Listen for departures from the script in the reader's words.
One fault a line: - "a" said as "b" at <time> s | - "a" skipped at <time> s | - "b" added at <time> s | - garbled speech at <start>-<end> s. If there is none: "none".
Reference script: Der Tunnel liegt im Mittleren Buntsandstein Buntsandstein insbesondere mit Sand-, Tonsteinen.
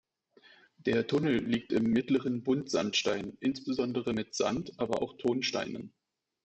- "Buntsandstein" skipped at 3.4 s
- "aber auch" added at 4.8 s